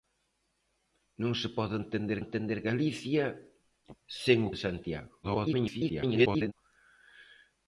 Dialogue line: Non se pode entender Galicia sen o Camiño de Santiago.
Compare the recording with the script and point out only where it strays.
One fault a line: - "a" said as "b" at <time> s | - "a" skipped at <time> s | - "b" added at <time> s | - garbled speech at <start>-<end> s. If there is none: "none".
- "entender" added at 2.2 s
- "Camiño" skipped at 4.6 s
- garbled speech at 5.2-6.5 s